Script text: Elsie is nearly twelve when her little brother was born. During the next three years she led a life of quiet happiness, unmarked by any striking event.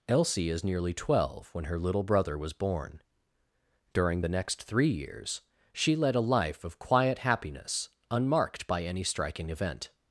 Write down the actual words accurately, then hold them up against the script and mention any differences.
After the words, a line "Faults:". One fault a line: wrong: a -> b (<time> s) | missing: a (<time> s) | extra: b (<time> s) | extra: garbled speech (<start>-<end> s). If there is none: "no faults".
Elsie is nearly twelve when her little brother was born. During the next three years she led a life of quiet happiness, unmarked by any striking event.
Faults:
no faults